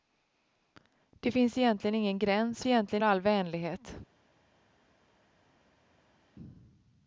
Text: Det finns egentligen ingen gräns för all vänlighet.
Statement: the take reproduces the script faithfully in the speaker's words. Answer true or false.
false